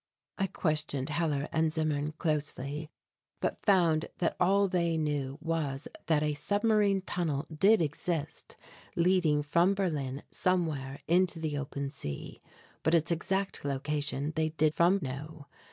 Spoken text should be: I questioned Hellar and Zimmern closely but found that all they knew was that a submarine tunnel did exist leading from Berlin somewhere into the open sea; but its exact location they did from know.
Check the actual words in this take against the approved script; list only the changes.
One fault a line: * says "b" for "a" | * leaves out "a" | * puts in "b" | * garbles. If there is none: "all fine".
all fine